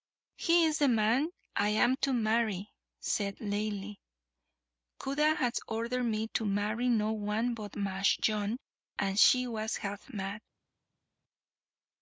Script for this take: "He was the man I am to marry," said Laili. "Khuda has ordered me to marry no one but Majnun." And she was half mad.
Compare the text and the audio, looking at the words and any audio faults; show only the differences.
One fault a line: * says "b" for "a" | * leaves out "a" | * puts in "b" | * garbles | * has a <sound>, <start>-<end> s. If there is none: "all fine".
* says "is" for "was"